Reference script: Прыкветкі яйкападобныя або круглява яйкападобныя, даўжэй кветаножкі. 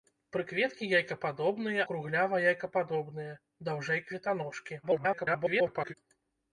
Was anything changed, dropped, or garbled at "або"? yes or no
yes